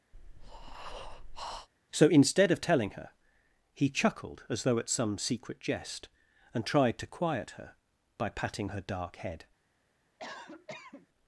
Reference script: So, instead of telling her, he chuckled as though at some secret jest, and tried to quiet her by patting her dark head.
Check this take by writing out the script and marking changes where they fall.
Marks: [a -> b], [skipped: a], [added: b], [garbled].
So, instead of telling her, he chuckled as though at some secret jest, and tried to quiet her by patting her dark head.